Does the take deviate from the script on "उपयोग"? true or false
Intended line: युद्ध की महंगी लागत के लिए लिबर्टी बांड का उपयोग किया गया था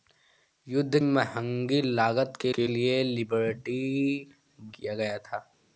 true